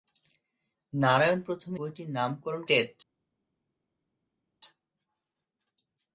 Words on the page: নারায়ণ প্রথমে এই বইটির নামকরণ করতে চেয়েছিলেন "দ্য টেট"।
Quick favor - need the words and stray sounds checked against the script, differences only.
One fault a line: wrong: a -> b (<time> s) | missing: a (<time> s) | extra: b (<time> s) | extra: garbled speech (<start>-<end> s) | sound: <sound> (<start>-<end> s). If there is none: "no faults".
missing: এই (1.8 s)
missing: করতে চেয়েছিলেন দ্য (2.6 s)